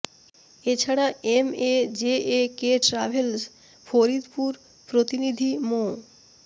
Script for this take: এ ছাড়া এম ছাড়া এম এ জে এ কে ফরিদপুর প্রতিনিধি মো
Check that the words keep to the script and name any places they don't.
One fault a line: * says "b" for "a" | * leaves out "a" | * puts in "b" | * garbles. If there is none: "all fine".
* leaves out "ছাড়া এম"
* puts in "ট্রাভেলস"